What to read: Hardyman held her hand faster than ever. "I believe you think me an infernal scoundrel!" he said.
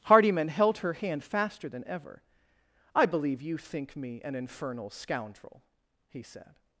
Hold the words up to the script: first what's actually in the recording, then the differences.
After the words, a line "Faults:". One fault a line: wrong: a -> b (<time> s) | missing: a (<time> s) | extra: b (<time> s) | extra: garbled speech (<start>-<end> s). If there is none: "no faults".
Hardyman held her hand faster than ever. "I believe you think me an infernal scoundrel!" he said.
Faults:
no faults